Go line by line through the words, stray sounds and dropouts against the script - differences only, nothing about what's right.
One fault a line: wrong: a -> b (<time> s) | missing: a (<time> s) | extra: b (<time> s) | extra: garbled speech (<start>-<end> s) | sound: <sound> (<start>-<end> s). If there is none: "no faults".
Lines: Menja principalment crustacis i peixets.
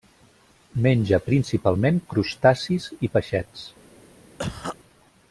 sound: cough (4.4-4.8 s)